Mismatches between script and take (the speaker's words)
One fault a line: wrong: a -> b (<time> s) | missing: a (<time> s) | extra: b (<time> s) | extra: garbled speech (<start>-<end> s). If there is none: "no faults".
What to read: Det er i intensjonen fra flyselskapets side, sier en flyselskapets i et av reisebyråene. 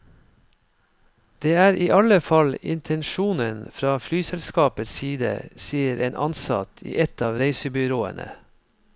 extra: alle fall (2.0 s)
wrong: flyselskapets -> ansatt (6.2 s)